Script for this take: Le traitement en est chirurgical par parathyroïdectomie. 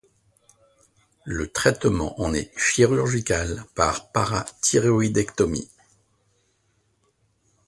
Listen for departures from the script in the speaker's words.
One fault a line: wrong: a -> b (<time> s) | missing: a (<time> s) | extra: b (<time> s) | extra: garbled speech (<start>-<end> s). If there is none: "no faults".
no faults